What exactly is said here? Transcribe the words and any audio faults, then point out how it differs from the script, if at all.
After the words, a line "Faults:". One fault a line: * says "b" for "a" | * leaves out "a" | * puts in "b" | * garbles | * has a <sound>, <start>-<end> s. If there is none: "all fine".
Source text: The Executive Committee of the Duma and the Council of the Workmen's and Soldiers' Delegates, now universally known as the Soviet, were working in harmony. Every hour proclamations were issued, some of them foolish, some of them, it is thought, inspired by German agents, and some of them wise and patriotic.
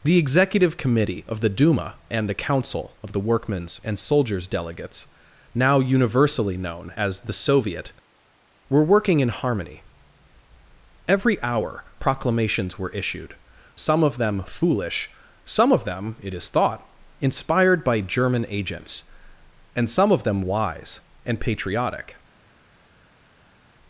The Executive Committee of the Duma and the Council of the Workmen's and Soldiers' Delegates, now universally known as the Soviet, were working in harmony. Every hour proclamations were issued, some of them foolish, some of them, it is thought, inspired by German agents, and some of them wise and patriotic.
Faults:
all fine